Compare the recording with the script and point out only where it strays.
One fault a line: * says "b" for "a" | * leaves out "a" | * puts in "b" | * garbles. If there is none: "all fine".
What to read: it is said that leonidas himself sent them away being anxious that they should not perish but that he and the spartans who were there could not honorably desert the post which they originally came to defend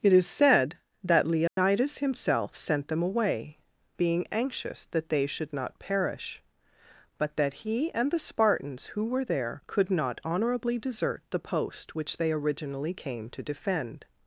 all fine